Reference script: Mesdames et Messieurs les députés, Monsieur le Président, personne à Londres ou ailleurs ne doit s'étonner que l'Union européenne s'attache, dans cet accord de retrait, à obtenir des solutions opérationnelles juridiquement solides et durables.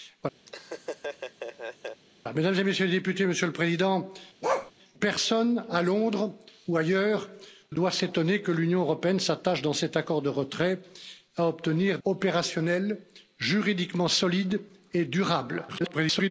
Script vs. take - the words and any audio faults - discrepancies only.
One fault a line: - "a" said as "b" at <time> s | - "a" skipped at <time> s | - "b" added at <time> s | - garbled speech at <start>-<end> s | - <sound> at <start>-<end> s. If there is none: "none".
- laugh at 0.5-2.0 s
- bark at 4.4-4.7 s
- "ne" skipped at 7.3 s
- "des solutions" skipped at 12.0 s
- garbled speech at 15.7-16.3 s